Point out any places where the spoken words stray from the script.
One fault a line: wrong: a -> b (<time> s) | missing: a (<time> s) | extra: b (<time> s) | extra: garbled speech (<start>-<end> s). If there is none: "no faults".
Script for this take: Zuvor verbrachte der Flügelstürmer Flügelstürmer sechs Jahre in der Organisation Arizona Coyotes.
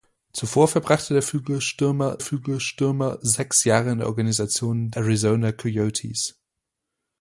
no faults